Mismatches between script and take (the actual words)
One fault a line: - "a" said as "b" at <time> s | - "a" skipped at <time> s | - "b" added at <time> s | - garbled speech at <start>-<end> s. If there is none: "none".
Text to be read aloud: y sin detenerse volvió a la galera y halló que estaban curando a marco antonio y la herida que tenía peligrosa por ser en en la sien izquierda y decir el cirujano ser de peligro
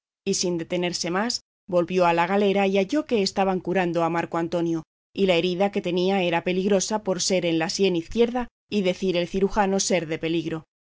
- "más" added at 1.1 s
- "era" added at 6.2 s
- "en" skipped at 7.6 s